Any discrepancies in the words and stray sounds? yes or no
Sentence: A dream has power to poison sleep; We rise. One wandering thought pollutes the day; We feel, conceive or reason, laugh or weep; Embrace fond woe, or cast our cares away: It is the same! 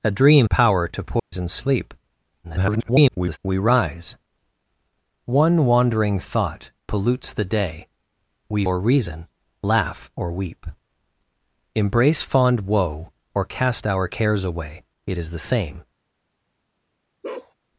yes